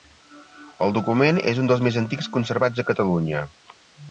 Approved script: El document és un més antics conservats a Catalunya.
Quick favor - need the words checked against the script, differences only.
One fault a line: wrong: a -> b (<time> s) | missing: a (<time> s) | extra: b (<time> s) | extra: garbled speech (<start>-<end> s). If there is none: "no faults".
extra: dels (1.7 s)